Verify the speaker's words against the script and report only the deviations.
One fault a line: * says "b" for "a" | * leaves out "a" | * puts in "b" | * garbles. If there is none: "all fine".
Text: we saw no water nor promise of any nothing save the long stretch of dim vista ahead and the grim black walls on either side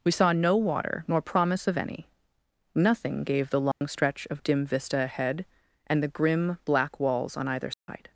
* says "gave" for "save"